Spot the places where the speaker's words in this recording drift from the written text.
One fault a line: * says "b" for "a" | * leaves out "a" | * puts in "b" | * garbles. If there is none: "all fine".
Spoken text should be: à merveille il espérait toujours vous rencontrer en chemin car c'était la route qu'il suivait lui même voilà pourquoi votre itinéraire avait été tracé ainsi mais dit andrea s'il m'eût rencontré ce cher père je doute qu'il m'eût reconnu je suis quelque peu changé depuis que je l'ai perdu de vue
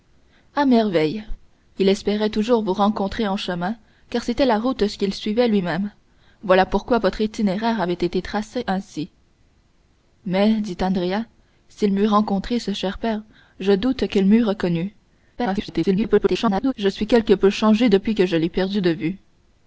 * garbles